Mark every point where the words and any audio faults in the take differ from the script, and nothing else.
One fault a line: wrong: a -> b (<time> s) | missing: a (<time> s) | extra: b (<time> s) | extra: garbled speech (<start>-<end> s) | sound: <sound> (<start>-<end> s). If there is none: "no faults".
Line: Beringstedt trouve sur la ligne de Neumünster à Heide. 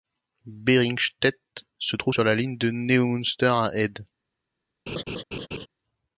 extra: se (1.8 s)
sound: laugh (4.9-5.7 s)